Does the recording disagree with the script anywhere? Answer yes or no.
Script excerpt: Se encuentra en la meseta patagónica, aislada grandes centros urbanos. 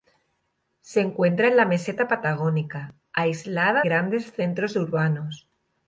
no